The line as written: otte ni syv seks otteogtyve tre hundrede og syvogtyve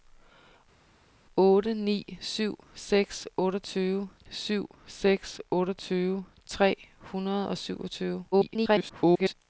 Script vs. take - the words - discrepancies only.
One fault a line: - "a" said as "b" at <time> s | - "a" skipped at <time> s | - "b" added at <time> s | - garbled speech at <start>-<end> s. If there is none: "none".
- "syv seks otteogtyve" added at 4.3 s
- garbled speech at 8.3-9.3 s